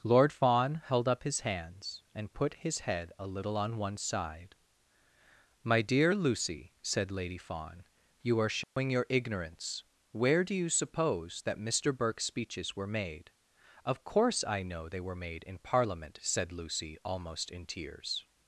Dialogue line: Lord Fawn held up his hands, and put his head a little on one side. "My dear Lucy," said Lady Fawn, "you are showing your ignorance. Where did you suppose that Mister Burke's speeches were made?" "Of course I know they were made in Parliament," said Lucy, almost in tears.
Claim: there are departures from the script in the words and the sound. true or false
true